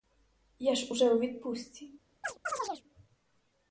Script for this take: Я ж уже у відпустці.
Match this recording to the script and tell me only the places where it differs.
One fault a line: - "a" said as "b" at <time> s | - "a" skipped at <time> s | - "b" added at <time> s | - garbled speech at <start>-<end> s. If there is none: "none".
none